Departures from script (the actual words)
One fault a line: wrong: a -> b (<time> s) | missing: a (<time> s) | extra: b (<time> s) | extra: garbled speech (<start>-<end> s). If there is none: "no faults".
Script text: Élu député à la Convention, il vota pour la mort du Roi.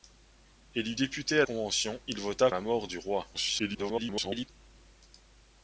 missing: la (1.4 s)
missing: pour (2.5 s)
extra: garbled speech (3.3-4.5 s)